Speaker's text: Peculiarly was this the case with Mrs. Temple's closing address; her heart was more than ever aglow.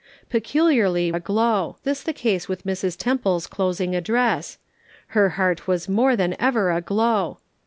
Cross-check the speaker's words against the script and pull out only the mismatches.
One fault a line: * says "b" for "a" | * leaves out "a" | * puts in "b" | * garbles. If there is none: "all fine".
* says "aglow" for "was"